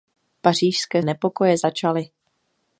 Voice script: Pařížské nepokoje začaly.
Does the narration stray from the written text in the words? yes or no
no